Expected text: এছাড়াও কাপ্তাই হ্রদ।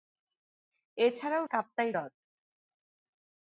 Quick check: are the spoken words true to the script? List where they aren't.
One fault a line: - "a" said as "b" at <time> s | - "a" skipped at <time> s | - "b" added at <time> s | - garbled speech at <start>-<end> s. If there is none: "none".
none